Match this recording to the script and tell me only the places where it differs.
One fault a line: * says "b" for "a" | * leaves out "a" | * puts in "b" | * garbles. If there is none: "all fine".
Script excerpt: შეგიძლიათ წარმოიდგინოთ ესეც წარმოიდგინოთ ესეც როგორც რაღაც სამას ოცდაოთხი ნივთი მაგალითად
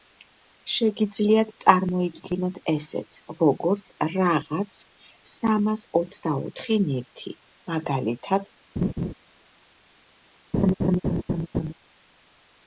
* leaves out "წარმოიდგინოთ ესეც"